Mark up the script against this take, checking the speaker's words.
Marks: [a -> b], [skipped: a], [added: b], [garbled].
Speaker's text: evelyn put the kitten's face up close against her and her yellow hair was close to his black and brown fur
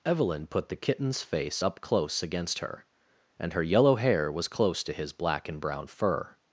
evelyn put the kitten's face up close against her and her yellow hair was close to his black and brown fur